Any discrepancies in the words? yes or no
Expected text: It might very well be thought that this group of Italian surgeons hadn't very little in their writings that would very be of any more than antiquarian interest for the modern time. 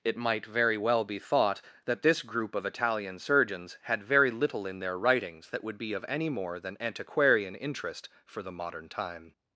yes